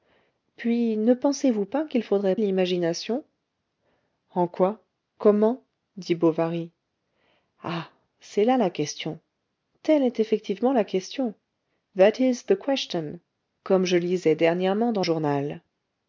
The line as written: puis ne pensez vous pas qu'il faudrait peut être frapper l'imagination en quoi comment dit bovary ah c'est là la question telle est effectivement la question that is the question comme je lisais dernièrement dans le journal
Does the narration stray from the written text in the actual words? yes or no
yes